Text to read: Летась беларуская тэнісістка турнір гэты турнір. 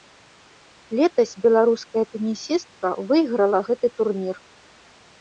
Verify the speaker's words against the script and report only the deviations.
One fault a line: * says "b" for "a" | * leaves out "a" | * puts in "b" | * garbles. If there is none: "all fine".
* says "выйграла" for "турнір"